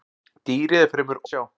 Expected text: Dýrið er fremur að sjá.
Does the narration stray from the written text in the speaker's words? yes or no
no